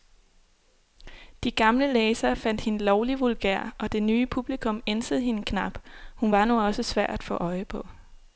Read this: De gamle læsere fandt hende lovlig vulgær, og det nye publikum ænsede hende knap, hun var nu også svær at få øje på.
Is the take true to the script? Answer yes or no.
yes